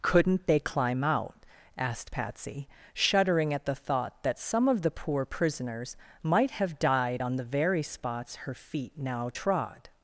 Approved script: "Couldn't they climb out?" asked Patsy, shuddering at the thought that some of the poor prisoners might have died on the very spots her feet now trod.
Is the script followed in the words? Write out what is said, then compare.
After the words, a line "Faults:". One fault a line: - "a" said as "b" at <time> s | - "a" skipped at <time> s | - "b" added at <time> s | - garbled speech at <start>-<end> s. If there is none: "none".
"Couldn't they climb out?" asked Patsy, shuddering at the thought that some of the poor prisoners might have died on the very spots her feet now trod.
Faults:
none